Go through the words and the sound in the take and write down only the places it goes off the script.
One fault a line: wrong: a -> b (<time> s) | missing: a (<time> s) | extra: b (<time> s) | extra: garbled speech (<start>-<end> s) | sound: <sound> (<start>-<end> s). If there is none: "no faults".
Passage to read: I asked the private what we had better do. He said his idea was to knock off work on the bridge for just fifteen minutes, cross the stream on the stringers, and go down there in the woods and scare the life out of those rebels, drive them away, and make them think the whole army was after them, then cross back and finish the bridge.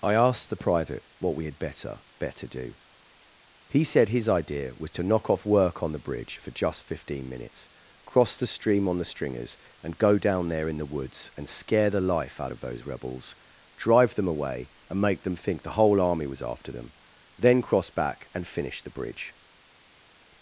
extra: better (2.2 s)